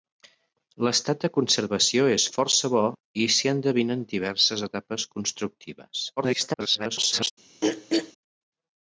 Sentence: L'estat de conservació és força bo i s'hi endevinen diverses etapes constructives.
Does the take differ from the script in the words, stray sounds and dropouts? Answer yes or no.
yes